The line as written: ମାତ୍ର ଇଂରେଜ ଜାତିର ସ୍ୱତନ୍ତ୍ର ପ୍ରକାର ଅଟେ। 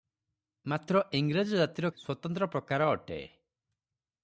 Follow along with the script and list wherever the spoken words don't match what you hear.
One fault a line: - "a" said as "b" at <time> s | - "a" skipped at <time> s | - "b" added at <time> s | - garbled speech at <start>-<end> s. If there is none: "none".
none